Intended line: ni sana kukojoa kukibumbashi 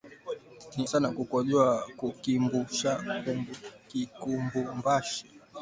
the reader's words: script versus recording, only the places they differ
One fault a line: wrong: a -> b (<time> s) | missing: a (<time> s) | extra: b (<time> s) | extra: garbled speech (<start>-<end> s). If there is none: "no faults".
no faults